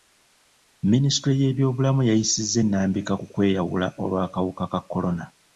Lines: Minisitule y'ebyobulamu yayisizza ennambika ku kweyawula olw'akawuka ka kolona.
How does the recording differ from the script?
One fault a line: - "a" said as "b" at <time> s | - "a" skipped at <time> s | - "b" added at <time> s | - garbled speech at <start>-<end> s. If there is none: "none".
none